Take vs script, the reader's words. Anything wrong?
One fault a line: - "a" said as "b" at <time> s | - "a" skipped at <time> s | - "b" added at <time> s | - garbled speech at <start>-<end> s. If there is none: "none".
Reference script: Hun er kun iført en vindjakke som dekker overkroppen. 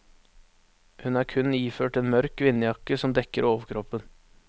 - "mørk" added at 2.1 s